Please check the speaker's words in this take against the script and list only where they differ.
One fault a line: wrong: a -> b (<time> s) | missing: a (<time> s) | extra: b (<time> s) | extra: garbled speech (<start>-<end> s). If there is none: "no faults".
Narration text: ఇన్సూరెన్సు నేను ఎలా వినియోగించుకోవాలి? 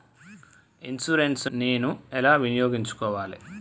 no faults